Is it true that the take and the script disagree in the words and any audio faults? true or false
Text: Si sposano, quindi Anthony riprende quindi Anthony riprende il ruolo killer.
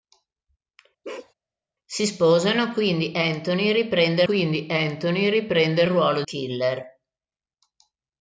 true